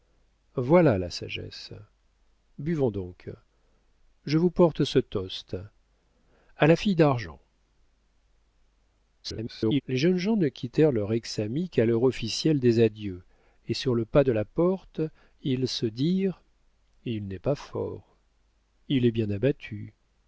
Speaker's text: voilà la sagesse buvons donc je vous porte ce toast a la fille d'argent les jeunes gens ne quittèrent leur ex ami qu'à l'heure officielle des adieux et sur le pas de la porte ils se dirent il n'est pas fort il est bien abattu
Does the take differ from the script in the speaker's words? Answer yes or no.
yes